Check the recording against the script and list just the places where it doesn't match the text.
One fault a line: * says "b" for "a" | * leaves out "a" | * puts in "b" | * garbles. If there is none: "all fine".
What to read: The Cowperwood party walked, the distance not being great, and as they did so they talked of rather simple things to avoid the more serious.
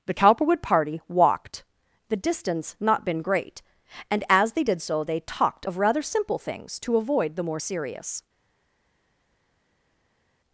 * says "been" for "being"